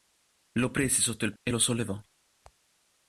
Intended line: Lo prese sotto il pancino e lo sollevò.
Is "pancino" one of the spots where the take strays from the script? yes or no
yes